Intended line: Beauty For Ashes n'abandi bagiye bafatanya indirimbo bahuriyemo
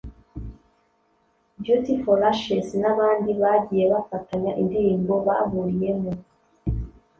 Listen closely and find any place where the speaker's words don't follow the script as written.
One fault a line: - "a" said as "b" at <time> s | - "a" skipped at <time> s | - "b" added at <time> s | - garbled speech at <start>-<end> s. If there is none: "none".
none